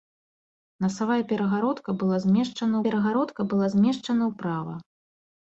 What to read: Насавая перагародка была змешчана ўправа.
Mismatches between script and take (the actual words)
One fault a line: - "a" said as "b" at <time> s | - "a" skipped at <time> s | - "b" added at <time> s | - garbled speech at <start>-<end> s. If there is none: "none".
- "перагародка была змешчана" added at 2.9 s